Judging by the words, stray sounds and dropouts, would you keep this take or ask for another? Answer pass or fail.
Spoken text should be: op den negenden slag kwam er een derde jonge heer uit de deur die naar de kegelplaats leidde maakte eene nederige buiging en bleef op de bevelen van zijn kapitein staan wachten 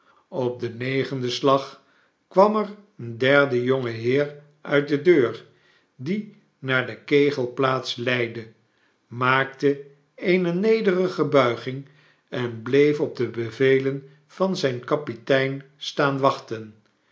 pass